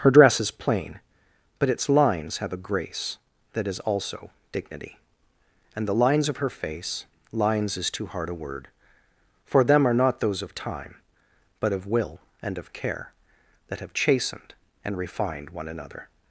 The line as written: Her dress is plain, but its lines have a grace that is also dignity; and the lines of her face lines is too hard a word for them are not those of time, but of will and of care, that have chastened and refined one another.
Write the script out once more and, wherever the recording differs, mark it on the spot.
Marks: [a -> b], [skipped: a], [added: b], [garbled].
Her dress is plain, but its lines have a grace that is also dignity; and the lines of her face lines is too hard a word for them are not those of time, but of will and of care, that have chastened and refined one another.